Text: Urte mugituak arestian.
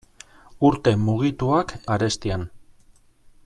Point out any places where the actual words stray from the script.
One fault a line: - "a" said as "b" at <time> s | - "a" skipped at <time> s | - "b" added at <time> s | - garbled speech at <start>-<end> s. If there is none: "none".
none